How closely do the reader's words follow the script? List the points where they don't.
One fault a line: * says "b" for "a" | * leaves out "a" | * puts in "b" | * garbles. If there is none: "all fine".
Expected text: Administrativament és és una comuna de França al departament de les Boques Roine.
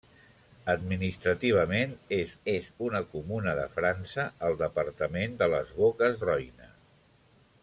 all fine